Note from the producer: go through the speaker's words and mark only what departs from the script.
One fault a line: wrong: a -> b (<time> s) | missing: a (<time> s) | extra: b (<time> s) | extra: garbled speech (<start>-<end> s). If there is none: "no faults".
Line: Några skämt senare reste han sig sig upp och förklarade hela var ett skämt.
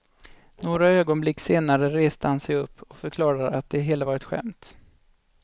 wrong: skämt -> ögonblick (0.9 s)
missing: sig (2.5 s)
extra: att det (3.5 s)